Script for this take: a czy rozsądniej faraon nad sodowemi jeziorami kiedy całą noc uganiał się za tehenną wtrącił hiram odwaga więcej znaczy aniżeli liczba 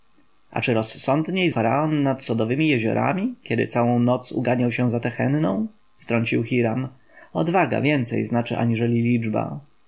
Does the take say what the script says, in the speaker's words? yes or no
yes